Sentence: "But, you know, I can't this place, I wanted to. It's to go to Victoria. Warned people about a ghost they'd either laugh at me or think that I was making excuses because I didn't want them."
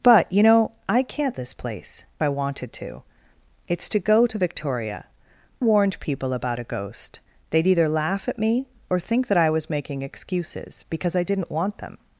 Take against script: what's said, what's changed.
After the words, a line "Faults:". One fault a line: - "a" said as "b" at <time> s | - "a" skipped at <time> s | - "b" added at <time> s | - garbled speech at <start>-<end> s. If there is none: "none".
"But, you know, I can't this place, I wanted to. It's to go to Victoria. Warned people about a ghost they'd either laugh at me or think that I was making excuses because I didn't want them."
Faults:
none